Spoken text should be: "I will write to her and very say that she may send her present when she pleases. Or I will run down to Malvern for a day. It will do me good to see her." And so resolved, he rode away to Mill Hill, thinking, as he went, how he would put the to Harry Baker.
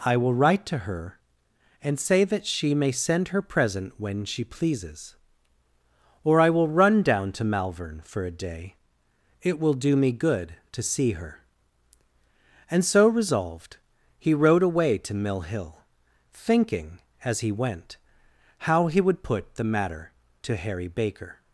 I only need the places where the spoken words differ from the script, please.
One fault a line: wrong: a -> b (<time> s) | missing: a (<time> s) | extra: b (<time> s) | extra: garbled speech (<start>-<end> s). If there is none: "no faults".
missing: very (2.0 s)
extra: matter (19.6 s)